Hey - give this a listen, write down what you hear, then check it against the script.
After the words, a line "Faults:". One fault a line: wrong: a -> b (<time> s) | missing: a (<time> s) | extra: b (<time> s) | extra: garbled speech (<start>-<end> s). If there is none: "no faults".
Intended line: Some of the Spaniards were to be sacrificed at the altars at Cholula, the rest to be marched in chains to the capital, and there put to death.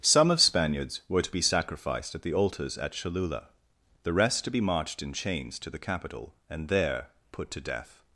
Some of Spaniards were to be sacrificed at the altars at Cholula, the rest to be marched in chains to the capital, and there put to death.
Faults:
missing: the (0.4 s)